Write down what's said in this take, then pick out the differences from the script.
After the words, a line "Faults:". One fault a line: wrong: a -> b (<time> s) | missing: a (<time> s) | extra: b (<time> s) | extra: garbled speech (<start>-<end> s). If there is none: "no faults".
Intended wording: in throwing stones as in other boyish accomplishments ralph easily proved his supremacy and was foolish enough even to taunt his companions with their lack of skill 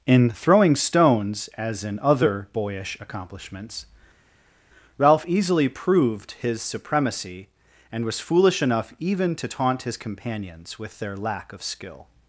in throwing stones as in other boyish accomplishments ralph easily proved his supremacy and was foolish enough even to taunt his companions with their lack of skill
Faults:
no faults